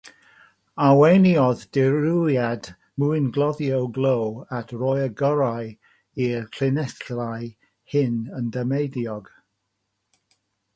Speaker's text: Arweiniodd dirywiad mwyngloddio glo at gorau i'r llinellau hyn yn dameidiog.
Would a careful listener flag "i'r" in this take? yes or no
no